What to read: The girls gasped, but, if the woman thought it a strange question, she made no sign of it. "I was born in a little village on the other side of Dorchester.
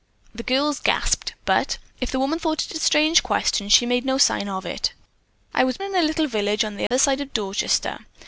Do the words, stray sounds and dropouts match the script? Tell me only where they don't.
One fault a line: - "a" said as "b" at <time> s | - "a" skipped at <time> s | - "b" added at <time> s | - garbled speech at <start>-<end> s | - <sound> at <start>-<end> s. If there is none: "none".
- "born" skipped at 5.8 s
- dropout at 6.9-6.9 s